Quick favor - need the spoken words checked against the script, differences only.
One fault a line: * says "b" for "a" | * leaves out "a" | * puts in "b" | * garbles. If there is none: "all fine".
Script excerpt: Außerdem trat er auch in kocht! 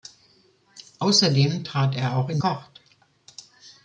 all fine